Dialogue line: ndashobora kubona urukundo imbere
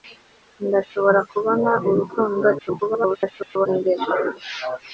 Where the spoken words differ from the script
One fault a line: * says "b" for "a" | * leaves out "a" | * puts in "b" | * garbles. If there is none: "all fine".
* garbles